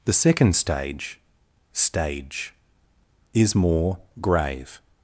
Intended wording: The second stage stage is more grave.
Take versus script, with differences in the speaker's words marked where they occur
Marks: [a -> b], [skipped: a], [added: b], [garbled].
The second stage stage is more grave.